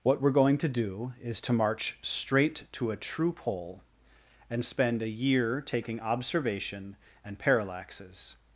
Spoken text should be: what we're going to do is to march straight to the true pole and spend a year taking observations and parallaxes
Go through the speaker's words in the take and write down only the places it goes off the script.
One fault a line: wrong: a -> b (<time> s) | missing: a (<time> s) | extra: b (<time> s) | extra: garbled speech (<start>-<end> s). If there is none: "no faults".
wrong: the -> a (2.9 s)
wrong: observations -> observation (6.0 s)